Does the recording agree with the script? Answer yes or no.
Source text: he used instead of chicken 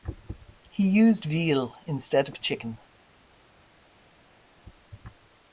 no